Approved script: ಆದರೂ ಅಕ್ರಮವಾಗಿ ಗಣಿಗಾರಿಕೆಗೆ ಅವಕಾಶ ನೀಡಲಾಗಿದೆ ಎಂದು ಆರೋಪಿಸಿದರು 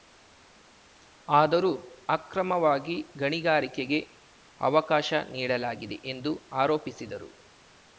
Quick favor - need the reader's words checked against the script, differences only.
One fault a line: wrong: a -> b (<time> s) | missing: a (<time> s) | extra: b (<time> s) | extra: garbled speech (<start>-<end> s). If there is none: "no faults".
no faults